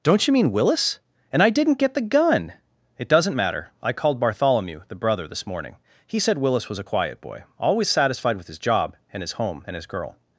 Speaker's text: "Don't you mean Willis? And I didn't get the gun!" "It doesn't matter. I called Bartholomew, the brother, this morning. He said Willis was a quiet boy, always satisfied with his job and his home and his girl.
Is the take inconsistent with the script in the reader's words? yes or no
no